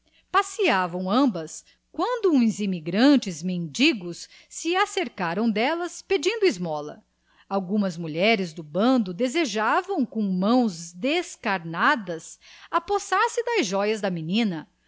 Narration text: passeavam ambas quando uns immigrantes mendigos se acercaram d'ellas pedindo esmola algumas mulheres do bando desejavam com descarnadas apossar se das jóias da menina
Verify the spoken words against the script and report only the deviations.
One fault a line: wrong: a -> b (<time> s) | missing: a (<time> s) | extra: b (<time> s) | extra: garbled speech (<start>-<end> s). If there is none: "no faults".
extra: mãos (10.2 s)